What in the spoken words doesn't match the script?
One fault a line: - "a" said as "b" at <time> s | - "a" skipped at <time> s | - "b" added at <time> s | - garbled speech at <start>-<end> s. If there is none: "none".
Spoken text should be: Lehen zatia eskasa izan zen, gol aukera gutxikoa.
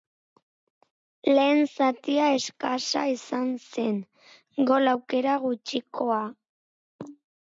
none